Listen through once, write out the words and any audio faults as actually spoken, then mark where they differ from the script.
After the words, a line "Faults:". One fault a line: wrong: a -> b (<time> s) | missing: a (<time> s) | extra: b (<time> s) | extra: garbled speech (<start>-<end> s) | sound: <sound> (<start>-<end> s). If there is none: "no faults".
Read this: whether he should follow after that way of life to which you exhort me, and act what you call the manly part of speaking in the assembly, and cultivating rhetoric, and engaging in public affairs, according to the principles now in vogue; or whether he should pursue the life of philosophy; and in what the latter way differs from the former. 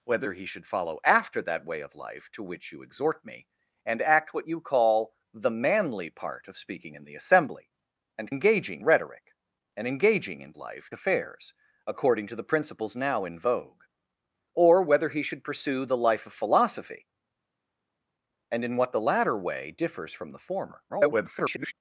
whether he should follow after that way of life to which you exhort me, and act what you call the manly part of speaking in the assembly, and engaging rhetoric, and engaging in life affairs, according to the principles now in vogue; or whether he should pursue the life of philosophy; and in what the latter way differs from the former. [garbled]
Faults:
wrong: cultivating -> engaging (8.3 s)
wrong: public -> life (10.6 s)
extra: garbled speech (20.9-21.7 s)